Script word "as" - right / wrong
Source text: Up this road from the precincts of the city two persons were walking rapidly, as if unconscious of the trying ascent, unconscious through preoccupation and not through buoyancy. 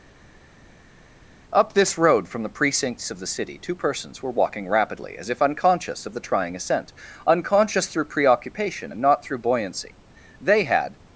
right